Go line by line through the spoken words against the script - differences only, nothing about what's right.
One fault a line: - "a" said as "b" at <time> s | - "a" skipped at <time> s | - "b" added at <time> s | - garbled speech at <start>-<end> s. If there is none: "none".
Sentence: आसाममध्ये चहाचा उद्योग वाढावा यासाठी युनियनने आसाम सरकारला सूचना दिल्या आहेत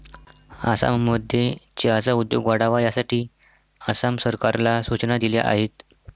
- "युनियनने" skipped at 3.2 s